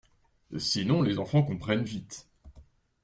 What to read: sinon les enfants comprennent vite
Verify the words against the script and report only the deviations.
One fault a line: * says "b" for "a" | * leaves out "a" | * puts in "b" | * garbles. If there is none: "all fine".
all fine